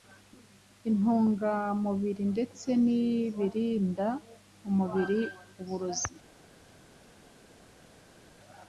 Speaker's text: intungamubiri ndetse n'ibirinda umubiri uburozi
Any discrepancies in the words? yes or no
no